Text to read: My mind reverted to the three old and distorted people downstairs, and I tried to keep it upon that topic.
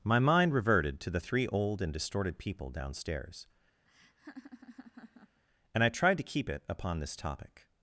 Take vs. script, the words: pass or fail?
fail